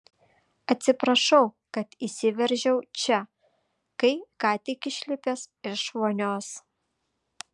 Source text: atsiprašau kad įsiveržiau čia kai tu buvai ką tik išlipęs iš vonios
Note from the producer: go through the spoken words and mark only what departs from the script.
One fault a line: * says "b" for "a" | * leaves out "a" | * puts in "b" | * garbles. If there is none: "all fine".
* leaves out "tu buvai"